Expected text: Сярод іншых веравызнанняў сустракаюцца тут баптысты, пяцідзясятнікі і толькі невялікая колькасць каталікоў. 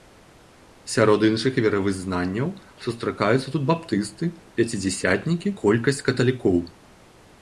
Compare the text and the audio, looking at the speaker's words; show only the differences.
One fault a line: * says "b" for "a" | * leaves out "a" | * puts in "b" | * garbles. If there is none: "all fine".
* leaves out "і толькі невялікая"